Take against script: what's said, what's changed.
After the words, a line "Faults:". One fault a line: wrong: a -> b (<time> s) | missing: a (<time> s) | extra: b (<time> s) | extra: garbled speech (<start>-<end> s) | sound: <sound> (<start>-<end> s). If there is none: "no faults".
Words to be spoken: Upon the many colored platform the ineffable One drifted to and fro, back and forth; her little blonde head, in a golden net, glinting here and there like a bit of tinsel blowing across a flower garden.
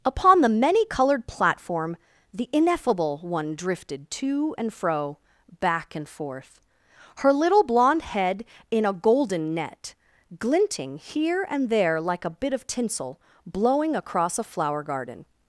Upon the many colored platform the ineffable One drifted to and fro, back and forth; her little blonde head, in a golden net, glinting here and there like a bit of tinsel blowing across a flower garden.
Faults:
no faults